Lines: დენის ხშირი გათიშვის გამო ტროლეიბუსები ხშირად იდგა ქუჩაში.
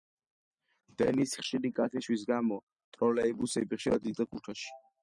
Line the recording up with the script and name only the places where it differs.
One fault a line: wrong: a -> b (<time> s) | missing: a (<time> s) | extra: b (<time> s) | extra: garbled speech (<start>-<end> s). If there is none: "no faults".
no faults